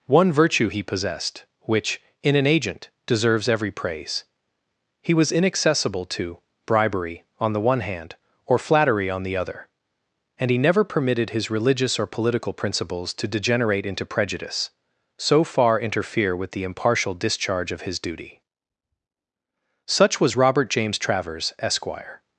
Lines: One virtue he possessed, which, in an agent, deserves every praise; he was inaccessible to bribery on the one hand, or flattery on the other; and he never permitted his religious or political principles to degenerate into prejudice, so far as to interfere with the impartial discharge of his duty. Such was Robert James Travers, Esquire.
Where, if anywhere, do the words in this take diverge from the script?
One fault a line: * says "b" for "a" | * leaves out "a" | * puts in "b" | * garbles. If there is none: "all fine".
* leaves out "as to"